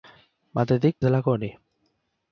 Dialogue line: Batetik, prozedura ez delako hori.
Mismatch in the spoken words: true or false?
true